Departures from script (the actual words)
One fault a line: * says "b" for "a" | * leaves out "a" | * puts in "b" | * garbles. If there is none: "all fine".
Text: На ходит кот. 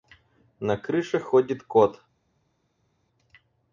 * puts in "крыше"